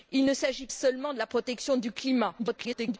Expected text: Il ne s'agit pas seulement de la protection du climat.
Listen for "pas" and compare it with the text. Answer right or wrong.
wrong